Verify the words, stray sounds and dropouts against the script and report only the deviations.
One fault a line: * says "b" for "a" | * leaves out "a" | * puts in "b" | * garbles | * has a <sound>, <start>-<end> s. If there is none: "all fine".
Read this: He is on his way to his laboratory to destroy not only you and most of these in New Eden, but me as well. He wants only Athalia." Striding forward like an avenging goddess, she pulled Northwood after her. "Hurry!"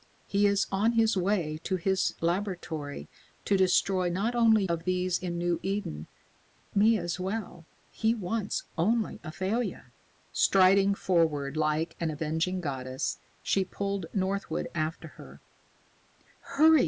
* leaves out "you and most"
* leaves out "but"